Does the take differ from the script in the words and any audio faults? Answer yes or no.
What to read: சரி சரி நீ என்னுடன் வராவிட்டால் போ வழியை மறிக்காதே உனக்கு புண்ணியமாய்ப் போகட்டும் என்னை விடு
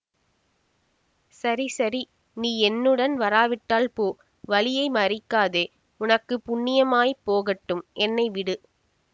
no